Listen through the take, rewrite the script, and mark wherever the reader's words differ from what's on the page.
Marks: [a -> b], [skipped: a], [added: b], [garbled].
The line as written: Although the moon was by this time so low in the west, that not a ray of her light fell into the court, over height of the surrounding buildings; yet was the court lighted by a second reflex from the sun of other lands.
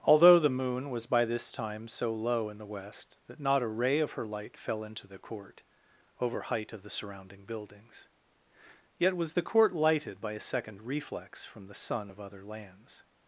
Although the moon was by this time so low in the west, that not a ray of her light fell into the court, over height of the surrounding buildings; yet was the court lighted by a second reflex from the sun of other lands.